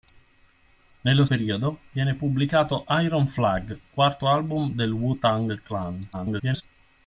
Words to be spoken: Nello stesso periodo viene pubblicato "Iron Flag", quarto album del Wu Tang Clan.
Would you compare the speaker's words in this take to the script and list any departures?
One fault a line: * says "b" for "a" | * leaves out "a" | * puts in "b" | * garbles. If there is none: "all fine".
* leaves out "stesso"
* garbles